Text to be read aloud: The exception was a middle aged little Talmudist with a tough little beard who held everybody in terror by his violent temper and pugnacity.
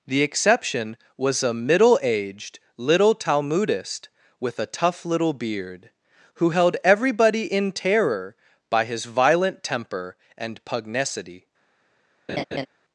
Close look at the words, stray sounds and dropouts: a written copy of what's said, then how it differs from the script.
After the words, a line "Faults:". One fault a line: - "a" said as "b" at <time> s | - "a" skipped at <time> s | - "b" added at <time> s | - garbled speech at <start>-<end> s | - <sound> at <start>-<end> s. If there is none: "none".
The exception was a middle aged little Talmudist with a tough little beard who held everybody in terror by his violent temper and pugnacity.
Faults:
- laugh at 12.3-12.7 s